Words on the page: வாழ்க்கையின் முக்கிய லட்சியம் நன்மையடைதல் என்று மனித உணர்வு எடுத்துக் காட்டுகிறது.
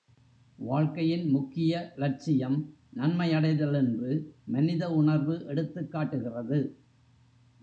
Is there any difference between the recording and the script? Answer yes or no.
no